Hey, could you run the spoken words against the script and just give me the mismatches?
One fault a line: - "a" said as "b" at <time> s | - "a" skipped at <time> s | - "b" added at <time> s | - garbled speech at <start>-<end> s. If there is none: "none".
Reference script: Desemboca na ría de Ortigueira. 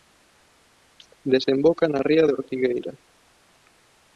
none